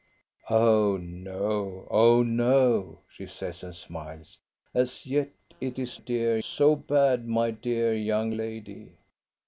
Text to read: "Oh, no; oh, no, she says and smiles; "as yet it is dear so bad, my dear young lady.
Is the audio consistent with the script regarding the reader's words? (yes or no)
yes